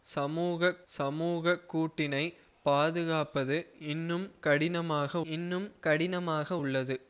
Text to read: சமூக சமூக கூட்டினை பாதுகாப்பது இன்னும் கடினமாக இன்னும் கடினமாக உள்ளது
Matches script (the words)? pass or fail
pass